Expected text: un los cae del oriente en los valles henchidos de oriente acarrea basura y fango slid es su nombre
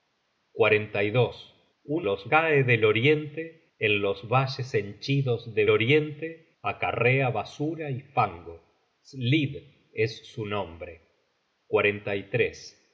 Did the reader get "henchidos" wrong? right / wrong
right